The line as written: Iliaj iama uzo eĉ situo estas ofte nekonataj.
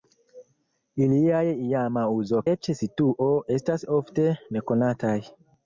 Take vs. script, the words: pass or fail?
pass